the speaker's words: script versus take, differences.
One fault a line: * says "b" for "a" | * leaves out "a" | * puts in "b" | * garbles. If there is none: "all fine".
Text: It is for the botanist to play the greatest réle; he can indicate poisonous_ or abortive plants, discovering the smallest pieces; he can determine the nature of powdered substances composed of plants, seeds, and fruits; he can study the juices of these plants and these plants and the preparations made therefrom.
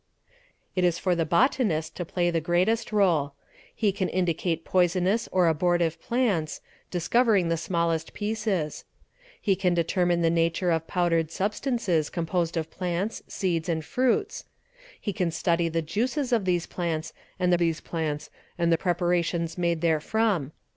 all fine